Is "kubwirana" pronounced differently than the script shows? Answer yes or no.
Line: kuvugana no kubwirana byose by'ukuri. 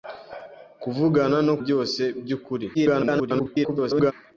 yes